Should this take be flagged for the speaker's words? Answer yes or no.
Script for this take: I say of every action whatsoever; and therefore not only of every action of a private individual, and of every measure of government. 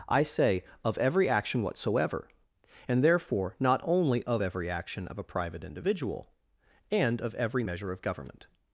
no